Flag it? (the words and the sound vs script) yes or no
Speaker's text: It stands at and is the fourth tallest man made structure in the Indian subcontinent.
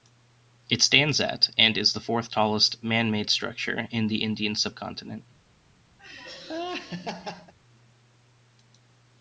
yes